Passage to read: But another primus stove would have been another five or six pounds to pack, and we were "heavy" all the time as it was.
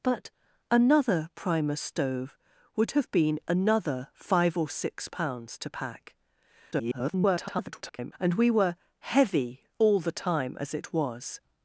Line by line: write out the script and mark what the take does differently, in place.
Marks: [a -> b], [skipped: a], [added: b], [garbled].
But another primus stove would have been another five or six pounds to pack, [garbled] and we were "heavy" all the time as it was.